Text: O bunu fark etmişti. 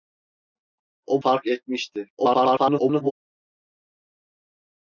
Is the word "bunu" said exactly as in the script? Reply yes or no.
no